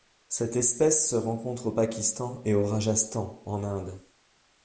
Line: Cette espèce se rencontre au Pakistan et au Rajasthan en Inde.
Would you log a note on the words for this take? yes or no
no